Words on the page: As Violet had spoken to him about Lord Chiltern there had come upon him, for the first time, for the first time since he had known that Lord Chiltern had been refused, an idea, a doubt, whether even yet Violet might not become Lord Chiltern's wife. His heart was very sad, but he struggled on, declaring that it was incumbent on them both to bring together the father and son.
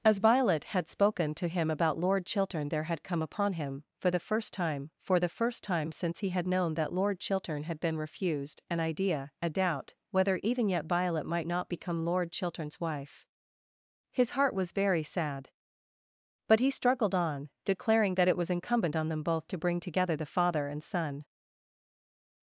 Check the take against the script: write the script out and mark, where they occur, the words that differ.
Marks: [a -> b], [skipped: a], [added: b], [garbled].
As Violet had spoken to him about Lord Chiltern there had come upon him, for the first time, for the first time since he had known that Lord Chiltern had been refused, an idea, a doubt, whether even yet Violet might not become Lord Chiltern's wife. His heart was very sad, but he struggled on, declaring that it was incumbent on them both to bring together the father and son.